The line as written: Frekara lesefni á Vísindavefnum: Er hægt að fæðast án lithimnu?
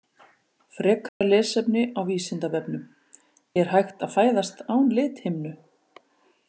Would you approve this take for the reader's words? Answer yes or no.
yes